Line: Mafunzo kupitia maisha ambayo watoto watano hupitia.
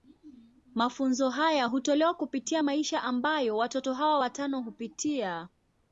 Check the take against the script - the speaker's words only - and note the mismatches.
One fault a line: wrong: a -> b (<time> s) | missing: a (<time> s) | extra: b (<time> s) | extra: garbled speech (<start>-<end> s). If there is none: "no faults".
extra: haya hutolewa (1.3 s)
extra: hawa (3.9 s)